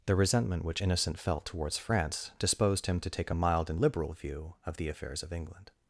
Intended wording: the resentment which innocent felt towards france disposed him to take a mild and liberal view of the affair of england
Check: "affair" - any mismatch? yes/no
yes